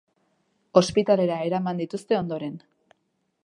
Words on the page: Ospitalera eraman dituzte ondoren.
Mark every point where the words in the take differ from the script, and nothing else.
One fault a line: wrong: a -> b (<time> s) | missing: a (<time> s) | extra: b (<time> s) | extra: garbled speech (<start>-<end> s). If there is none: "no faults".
no faults